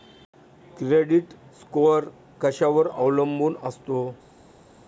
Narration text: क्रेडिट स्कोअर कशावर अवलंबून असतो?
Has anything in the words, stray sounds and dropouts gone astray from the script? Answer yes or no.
no